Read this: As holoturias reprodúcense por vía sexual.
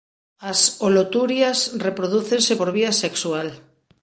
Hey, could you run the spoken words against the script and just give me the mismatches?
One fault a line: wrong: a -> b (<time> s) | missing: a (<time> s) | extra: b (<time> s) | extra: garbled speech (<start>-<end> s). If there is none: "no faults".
no faults